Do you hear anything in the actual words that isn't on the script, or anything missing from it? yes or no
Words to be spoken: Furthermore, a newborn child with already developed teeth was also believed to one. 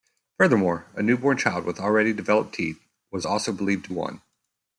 no